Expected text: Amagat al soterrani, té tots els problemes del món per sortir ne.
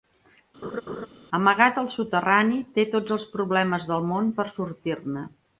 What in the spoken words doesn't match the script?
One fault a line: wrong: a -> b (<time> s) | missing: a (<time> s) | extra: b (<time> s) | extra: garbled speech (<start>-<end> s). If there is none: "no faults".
no faults